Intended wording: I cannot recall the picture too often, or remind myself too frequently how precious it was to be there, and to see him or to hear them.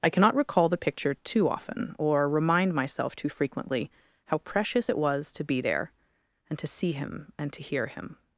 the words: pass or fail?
fail